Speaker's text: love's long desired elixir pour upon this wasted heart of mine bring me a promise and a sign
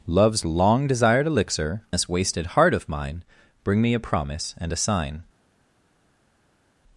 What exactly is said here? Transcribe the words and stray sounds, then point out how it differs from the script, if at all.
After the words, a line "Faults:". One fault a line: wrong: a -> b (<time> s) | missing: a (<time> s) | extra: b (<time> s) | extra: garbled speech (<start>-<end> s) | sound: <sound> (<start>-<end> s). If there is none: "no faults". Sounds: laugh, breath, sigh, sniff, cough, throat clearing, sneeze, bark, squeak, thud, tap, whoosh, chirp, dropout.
love's long desired elixir this wasted heart of mine bring me a promise and a sign
Faults:
missing: pour upon (1.8 s)